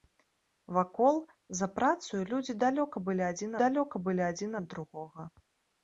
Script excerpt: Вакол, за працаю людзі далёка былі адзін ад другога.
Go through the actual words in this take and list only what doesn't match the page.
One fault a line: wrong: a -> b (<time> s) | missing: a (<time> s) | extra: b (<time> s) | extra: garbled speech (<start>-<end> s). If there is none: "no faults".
extra: далёка былі адзін (3.6 s)